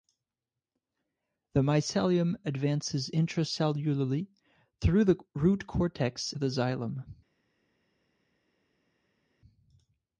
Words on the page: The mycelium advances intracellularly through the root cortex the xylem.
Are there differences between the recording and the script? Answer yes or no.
no